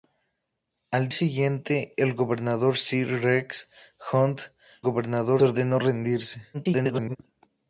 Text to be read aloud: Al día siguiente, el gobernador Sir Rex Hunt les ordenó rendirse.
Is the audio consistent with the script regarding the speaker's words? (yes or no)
no